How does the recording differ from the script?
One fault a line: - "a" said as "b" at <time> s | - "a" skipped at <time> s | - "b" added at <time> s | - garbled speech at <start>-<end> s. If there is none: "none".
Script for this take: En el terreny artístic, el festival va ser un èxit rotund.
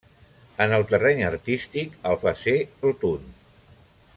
- "festival" skipped at 2.2 s
- "un èxit" skipped at 2.6 s